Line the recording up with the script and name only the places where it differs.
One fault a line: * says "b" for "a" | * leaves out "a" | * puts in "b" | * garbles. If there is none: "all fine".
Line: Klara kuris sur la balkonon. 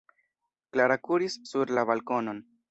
all fine